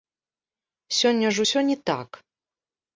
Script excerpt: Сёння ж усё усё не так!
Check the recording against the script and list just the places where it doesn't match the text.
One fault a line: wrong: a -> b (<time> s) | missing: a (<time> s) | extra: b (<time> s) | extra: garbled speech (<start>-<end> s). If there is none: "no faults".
missing: усё (1.6 s)